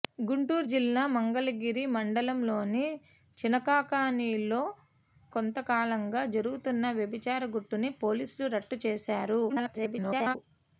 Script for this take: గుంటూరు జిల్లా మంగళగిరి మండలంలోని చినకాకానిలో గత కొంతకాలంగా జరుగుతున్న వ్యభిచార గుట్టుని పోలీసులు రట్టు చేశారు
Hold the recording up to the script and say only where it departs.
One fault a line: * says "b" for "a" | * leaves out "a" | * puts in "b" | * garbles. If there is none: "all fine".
* leaves out "గత"
* garbles